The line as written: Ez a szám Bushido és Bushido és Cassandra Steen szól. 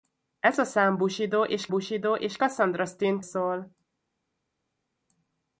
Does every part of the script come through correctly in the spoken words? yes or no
yes